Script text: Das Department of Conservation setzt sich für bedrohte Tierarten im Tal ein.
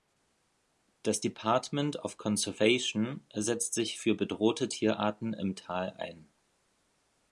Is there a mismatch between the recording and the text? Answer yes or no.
no